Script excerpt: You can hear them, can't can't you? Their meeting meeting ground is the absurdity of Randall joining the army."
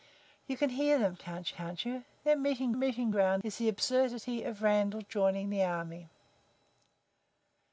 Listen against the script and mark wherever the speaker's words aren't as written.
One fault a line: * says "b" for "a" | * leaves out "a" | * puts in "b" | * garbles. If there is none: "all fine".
all fine